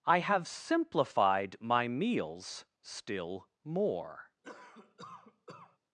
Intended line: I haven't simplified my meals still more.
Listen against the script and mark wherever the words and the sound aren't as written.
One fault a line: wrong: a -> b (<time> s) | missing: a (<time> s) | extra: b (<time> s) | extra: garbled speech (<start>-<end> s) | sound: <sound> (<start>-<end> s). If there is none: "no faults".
wrong: haven't -> have (0.2 s)
sound: cough (4.4-5.8 s)